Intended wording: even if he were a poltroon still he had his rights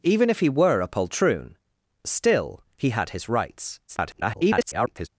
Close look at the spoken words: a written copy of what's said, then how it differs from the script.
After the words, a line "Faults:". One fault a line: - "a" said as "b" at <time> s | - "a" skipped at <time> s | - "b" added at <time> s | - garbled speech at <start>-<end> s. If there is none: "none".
even if he were a poltroon still he had his rights [garbled]
Faults:
- garbled speech at 3.9-5.1 s